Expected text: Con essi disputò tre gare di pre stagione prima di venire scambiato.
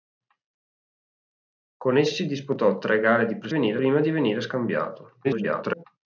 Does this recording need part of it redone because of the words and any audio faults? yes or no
yes